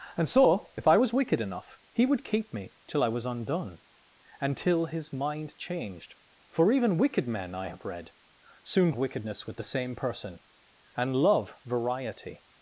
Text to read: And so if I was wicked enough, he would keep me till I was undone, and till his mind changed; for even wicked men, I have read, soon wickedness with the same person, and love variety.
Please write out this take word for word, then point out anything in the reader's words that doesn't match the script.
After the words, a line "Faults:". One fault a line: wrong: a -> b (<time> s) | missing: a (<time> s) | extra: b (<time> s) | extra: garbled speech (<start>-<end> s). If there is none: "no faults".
And so if I was wicked enough, he would keep me till I was undone, and till his mind changed; for even wicked men, I have read, soon wickedness with the same person, and love variety.
Faults:
no faults